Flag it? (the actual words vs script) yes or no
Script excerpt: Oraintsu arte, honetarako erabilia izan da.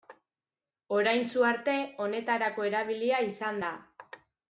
no